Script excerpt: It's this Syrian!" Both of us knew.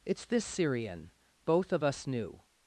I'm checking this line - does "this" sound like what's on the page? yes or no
yes